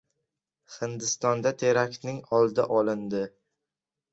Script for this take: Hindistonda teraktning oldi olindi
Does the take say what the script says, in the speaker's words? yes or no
yes